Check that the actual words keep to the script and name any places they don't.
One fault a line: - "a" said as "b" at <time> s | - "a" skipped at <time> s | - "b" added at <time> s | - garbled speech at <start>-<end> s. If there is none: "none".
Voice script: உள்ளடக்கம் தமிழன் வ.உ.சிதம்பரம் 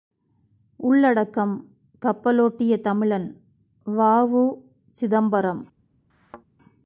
- "கப்பலோட்டிய" added at 2.0 s